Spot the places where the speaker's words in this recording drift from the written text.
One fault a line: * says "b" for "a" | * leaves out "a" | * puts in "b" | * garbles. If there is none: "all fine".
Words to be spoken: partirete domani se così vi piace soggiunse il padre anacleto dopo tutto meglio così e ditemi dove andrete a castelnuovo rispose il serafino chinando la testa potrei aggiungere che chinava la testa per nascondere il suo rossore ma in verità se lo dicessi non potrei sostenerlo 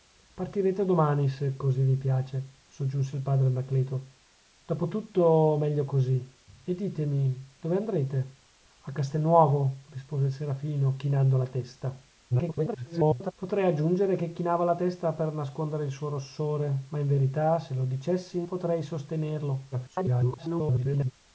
* garbles
* leaves out "non"
* garbles